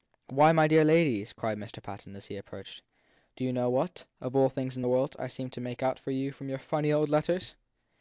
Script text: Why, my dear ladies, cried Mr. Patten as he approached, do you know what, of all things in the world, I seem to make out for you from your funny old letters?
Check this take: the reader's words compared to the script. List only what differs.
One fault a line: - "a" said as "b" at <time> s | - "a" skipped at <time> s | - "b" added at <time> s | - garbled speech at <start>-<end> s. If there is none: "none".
none